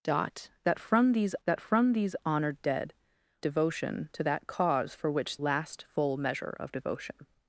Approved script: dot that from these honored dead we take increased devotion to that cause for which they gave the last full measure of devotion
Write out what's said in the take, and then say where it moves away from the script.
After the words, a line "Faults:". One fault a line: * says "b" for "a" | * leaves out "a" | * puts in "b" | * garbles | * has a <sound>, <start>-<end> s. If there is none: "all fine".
dot that from these that from these honored dead devotion to that cause for which last full measure of devotion
Faults:
* says "that from these honored dead" for "honored dead we take increased"
* leaves out "they gave the"